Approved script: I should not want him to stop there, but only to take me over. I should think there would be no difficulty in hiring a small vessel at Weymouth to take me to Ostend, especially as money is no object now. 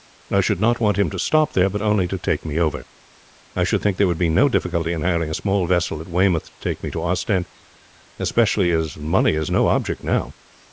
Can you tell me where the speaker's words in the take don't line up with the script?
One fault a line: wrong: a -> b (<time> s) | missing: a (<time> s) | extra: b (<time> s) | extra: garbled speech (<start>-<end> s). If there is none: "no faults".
no faults